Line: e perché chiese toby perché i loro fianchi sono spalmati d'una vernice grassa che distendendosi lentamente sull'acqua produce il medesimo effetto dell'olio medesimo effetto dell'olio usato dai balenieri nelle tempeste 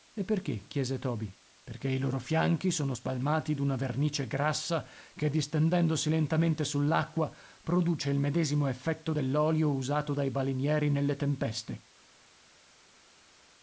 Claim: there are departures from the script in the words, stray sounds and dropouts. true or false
true